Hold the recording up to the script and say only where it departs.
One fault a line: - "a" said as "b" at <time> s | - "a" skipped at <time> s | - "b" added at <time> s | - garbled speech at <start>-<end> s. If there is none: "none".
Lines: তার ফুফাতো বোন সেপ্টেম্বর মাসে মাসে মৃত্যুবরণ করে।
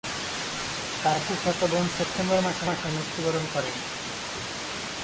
none